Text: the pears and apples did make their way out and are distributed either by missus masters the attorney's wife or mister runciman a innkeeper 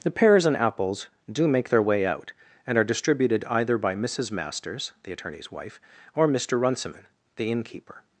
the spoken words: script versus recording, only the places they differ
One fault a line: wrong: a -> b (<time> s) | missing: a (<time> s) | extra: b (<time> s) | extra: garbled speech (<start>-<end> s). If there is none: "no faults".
wrong: did -> do (1.3 s)
wrong: a -> the (7.3 s)